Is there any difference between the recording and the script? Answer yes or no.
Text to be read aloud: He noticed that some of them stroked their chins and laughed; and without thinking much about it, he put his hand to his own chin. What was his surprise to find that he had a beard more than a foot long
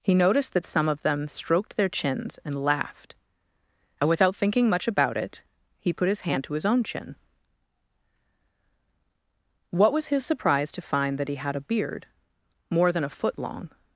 no